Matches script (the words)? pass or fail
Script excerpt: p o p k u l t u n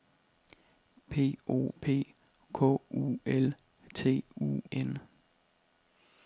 pass